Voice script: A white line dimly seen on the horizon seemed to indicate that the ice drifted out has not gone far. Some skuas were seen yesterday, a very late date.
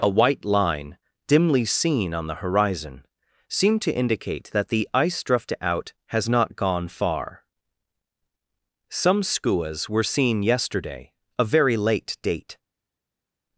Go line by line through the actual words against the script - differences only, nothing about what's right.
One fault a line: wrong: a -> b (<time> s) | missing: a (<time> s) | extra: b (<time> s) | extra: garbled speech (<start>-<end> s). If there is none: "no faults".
wrong: drifted -> drift (5.2 s)